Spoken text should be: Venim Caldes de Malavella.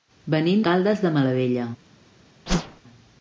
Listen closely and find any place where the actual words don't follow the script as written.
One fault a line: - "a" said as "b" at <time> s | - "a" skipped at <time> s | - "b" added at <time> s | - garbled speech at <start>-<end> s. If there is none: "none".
none